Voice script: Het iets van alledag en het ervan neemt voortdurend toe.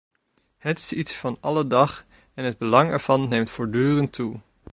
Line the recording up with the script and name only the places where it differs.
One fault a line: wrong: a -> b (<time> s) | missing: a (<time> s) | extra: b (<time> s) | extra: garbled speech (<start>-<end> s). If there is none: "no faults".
extra: is (0.8 s)
extra: belang (2.6 s)